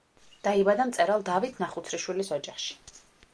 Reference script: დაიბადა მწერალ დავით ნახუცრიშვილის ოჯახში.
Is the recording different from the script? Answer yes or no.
no